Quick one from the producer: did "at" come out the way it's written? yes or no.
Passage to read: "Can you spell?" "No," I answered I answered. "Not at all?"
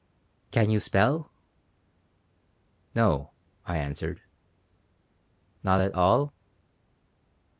yes